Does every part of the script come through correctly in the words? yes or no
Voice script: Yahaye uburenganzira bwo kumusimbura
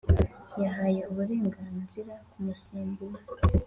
no